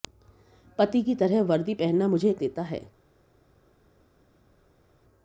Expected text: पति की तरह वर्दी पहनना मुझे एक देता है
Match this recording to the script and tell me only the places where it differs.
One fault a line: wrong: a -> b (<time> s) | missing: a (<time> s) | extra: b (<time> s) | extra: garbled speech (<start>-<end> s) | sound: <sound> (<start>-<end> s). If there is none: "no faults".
no faults